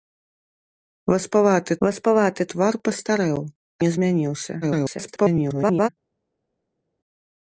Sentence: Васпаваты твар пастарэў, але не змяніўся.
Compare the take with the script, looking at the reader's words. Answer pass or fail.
fail